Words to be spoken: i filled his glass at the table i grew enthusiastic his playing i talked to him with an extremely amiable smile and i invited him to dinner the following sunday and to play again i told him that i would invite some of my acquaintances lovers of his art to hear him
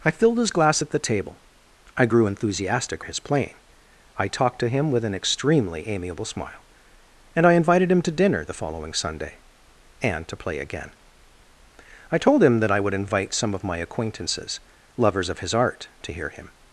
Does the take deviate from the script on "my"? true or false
false